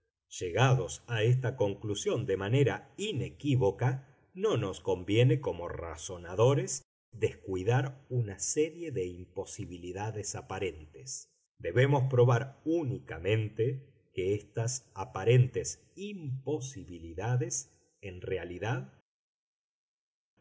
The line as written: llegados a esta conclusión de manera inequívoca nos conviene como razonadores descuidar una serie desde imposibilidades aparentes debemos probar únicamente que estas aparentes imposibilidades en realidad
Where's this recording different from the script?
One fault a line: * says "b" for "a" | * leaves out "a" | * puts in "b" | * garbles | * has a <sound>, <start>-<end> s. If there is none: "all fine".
* puts in "no"
* says "de" for "desde"